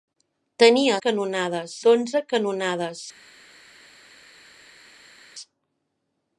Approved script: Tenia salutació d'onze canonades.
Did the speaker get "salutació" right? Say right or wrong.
wrong